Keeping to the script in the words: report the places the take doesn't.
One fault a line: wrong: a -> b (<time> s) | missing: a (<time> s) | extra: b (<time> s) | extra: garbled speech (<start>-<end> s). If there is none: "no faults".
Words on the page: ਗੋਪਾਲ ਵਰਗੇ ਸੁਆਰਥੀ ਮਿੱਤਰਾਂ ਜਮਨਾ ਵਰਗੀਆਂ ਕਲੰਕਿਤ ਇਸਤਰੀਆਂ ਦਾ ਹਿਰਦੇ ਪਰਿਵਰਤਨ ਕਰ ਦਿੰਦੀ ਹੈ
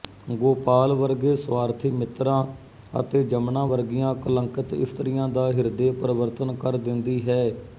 extra: ਅਤੇ (3.0 s)